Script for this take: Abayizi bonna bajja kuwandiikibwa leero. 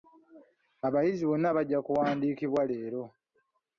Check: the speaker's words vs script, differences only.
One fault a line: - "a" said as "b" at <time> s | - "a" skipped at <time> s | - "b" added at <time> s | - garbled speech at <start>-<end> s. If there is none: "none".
none